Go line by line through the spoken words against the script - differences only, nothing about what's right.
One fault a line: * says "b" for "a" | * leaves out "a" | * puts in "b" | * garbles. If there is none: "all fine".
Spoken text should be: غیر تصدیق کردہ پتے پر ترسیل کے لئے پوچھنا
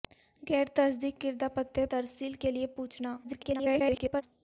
* leaves out "پر"
* garbles